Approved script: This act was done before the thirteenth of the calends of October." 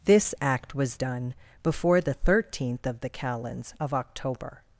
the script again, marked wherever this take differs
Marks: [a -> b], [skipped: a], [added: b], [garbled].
This act was done before the thirteenth of the calends of October."